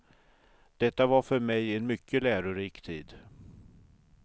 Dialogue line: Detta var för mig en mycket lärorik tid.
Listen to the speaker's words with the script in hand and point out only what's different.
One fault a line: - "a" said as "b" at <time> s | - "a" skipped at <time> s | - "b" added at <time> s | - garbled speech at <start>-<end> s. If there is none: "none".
none